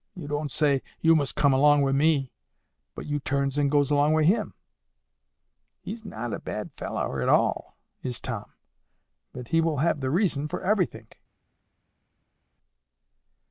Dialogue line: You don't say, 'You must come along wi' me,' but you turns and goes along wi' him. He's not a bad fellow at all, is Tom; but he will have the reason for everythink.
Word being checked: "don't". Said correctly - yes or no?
yes